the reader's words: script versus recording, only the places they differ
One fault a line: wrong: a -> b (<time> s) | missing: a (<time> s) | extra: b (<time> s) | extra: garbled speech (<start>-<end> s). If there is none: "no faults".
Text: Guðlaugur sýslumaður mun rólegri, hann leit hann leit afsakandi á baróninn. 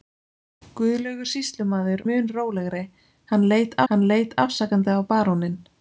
no faults